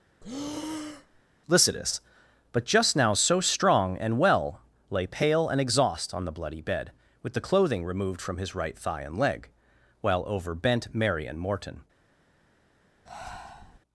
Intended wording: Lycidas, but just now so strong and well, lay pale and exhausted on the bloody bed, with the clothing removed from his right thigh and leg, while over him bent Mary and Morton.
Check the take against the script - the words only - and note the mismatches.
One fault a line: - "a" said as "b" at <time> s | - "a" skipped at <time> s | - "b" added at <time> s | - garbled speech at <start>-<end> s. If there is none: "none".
- "exhausted" said as "exhaust" at 5.6 s
- "him" skipped at 10.5 s